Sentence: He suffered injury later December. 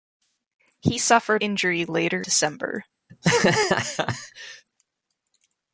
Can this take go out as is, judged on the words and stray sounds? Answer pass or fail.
fail